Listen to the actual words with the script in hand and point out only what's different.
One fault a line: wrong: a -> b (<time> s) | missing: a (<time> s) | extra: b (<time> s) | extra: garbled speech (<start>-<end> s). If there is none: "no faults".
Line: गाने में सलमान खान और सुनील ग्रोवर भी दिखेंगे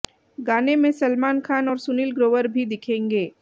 no faults